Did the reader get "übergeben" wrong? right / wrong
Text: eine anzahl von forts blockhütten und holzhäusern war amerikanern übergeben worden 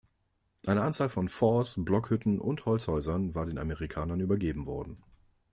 right